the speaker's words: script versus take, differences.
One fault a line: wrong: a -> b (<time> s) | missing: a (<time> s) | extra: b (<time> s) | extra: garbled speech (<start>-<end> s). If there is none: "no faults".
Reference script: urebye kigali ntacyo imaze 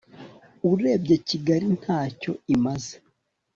no faults